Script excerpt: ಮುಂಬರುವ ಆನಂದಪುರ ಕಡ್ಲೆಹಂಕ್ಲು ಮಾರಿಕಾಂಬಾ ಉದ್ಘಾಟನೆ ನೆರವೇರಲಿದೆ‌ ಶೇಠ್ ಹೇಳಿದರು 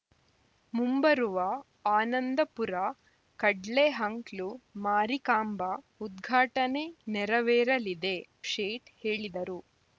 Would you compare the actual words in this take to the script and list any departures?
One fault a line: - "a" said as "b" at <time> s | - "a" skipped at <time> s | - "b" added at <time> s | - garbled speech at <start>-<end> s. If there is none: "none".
none